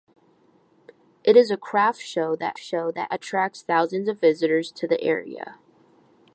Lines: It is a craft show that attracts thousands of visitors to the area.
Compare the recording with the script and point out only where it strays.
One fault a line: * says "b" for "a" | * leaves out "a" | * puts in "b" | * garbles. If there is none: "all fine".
* puts in "show that"